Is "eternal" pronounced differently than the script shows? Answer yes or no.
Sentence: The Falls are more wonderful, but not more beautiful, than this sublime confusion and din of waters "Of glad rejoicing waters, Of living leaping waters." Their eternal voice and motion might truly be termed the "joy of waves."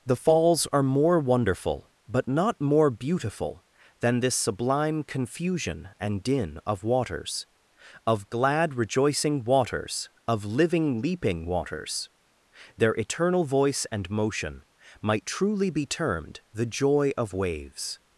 no